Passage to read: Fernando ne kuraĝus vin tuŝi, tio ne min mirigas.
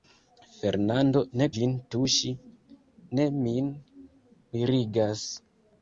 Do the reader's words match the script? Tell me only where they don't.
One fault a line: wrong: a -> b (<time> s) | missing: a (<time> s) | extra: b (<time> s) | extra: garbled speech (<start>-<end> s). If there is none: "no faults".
missing: kuraĝus (1.5 s)
missing: tio (2.3 s)